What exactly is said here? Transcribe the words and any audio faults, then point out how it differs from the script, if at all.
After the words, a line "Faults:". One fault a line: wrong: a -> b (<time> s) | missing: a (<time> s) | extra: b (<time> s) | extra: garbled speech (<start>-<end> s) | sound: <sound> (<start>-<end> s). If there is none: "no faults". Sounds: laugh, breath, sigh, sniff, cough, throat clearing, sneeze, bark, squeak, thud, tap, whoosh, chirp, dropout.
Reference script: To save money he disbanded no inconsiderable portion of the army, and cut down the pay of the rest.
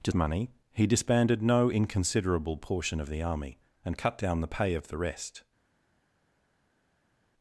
To money he disbanded no inconsiderable portion of the army, and cut down the pay of the rest.
Faults:
missing: save (0.1 s)